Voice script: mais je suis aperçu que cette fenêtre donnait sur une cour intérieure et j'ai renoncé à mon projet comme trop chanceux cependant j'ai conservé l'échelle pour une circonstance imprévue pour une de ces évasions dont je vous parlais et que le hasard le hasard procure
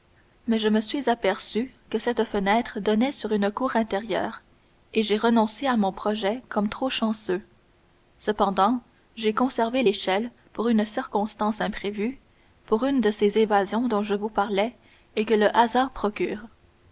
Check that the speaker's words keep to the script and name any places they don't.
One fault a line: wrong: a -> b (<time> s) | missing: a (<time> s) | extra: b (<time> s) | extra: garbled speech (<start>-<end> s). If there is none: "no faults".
extra: me (0.7 s)
missing: le hasard (15.9 s)